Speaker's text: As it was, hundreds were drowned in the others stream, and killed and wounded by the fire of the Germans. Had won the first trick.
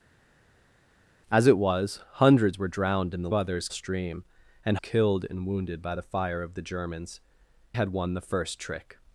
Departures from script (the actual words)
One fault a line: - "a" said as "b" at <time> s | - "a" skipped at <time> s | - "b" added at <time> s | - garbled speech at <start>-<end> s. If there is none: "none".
none